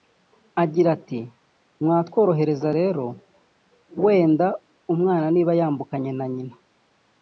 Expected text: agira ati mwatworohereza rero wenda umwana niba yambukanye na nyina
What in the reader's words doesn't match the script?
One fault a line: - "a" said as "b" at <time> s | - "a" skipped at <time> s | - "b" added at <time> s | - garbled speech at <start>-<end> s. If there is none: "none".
none